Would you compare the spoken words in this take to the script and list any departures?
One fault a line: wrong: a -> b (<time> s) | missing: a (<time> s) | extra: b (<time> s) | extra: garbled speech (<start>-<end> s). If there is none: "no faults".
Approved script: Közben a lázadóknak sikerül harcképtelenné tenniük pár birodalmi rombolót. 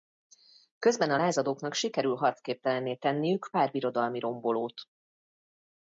no faults